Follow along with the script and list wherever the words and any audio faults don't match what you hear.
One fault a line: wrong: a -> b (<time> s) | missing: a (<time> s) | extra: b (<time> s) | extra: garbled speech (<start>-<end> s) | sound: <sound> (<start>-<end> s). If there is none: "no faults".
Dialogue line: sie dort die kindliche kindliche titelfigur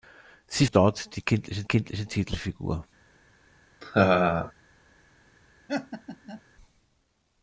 sound: laugh (3.8-4.5 s)
sound: laugh (5.7-6.4 s)